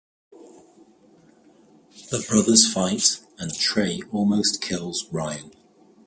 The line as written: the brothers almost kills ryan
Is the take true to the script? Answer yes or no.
no